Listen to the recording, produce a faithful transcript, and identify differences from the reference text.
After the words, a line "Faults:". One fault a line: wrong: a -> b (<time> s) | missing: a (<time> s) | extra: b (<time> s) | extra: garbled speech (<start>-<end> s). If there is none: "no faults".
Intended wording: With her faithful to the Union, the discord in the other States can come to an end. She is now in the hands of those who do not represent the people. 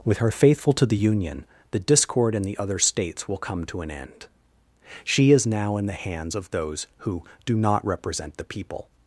With her faithful to the Union, the discord in the other States will come to an end. She is now in the hands of those who do not represent the people.
Faults:
wrong: can -> will (3.3 s)